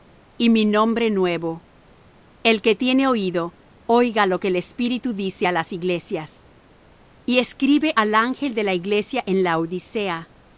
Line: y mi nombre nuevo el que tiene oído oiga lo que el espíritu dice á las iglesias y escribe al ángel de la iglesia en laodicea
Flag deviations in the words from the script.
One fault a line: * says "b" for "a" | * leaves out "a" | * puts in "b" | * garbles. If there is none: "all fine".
all fine